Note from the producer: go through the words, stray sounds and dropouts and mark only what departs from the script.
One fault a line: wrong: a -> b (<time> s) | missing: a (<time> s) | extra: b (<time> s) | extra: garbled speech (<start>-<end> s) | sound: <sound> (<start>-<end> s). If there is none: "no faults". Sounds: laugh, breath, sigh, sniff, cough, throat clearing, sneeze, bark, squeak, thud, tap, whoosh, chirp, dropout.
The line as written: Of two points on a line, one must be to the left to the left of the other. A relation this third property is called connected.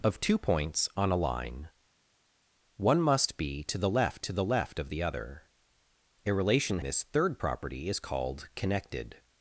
no faults